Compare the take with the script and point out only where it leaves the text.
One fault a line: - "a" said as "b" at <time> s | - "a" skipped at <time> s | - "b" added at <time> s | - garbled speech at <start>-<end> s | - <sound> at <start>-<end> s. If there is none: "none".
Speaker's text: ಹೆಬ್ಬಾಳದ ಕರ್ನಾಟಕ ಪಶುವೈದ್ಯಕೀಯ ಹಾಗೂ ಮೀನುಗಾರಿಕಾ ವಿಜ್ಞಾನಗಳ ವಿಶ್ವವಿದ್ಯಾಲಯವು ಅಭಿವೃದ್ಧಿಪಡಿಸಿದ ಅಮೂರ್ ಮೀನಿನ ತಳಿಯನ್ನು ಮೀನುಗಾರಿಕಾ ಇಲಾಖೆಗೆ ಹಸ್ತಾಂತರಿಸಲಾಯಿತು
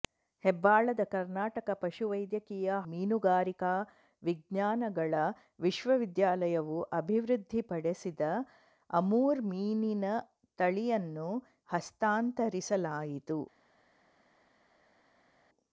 - "ಹಾಗೂ" skipped at 2.8 s
- "ಮೀನುಗಾರಿಕಾ ಇಲಾಖೆಗೆ" skipped at 11.3 s